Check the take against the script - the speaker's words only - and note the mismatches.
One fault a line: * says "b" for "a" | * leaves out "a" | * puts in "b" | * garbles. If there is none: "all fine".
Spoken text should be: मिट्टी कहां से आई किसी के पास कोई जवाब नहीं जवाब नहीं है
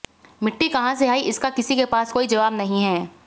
* puts in "इसका"
* leaves out "जवाब नहीं"